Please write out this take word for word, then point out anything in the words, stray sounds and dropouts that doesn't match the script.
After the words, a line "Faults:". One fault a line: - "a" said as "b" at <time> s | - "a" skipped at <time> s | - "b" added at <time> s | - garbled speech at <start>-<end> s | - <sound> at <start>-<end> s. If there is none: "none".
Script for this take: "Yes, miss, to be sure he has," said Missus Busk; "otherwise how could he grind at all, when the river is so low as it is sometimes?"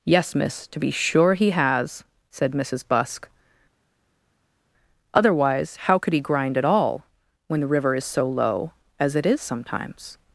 "Yes, miss, to be sure he has," said Missus Busk; "otherwise how could he grind at all, when the river is so low as it is sometimes?"
Faults:
none